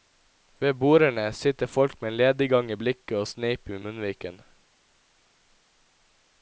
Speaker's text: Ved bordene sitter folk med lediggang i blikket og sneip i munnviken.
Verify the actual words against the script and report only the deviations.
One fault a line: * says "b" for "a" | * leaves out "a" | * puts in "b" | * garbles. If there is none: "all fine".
all fine